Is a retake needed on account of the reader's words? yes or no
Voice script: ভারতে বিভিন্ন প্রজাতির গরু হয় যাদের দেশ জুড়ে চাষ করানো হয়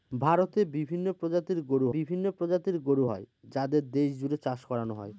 yes